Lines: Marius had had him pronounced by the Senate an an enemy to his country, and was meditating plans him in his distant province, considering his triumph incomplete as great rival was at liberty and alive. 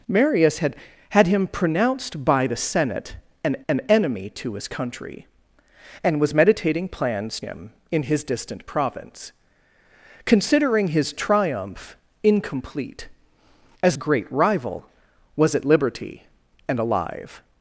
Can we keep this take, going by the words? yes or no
yes